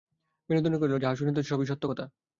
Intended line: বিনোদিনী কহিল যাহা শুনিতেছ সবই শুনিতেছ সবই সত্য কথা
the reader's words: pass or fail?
fail